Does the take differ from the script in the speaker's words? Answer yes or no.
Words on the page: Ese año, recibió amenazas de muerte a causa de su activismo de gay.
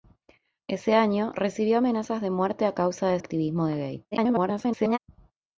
yes